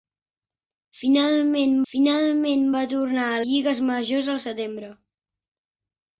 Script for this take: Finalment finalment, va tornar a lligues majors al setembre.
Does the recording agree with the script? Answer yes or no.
yes